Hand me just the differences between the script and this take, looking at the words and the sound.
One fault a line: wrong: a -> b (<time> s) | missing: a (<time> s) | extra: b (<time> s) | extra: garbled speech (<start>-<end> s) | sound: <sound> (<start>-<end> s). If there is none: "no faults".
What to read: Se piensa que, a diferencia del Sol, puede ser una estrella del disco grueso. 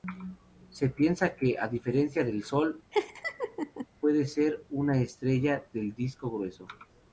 sound: laugh (2.9-3.9 s)